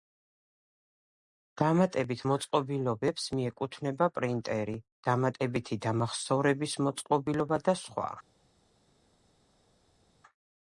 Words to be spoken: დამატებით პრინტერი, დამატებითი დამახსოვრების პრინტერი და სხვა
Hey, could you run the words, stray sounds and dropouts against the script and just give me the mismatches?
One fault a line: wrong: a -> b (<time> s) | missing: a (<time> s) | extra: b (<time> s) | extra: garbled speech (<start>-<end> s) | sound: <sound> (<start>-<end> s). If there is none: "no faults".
extra: მოწყობილობებს მიეკუთვნება (2.3 s)
wrong: პრინტერი -> მოწყობილობა (6.9 s)